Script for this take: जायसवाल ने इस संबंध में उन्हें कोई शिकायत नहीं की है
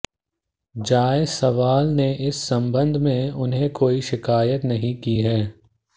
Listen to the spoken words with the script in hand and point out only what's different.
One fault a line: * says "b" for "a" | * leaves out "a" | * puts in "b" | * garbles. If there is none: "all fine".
all fine